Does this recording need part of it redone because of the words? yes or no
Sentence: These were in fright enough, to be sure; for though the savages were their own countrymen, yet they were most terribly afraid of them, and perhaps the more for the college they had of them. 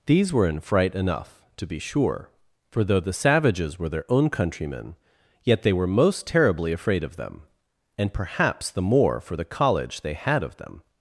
no